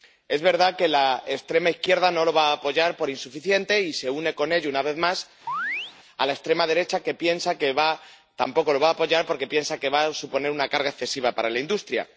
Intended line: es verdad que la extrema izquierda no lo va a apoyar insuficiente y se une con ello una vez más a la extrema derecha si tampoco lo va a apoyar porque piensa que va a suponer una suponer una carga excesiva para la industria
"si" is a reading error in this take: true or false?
true